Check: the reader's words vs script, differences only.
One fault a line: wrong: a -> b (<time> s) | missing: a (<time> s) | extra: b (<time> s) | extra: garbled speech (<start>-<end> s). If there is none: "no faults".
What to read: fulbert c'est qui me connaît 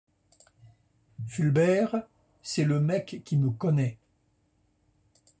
extra: le mec (2.6 s)